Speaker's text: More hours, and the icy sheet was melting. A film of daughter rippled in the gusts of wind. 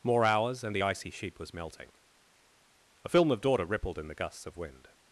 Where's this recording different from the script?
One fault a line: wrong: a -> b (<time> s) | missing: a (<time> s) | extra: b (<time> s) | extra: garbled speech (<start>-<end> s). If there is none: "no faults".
no faults